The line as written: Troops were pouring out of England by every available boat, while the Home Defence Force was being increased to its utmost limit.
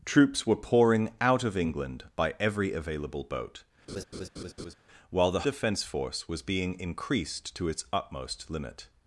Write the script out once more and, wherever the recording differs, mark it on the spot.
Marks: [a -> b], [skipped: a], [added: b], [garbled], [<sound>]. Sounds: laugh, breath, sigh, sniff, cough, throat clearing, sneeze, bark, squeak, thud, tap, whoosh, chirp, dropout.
Troops were pouring out of England by every available boat, [laugh] while the [skipped: Home] Defence Force was being increased to its utmost limit.